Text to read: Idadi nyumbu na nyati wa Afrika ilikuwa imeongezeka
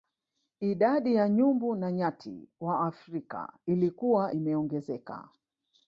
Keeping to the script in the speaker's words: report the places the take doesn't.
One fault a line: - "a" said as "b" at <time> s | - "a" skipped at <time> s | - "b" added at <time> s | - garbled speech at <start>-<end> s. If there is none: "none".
- "ya" added at 1.1 s